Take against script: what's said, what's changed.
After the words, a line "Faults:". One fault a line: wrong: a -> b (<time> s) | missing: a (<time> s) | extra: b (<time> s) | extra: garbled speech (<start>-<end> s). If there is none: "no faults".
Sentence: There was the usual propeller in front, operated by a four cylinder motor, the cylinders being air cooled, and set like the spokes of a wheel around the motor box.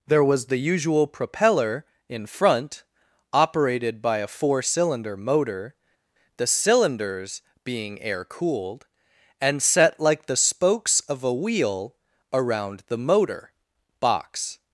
There was the usual propeller in front, operated by a four cylinder motor, the cylinders being air cooled, and set like the spokes of a wheel around the motor box.
Faults:
no faults